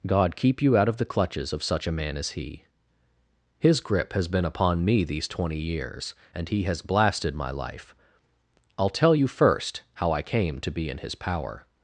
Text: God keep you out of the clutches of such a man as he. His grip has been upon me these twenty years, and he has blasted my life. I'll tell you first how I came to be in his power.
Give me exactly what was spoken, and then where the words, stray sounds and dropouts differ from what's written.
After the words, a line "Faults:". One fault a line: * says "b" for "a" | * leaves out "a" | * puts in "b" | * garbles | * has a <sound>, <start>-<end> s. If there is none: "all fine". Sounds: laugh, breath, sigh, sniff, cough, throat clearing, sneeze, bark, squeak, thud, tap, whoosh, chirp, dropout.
God keep you out of the clutches of such a man as he. His grip has been upon me these twenty years, and he has blasted my life. I'll tell you first how I came to be in his power.
Faults:
all fine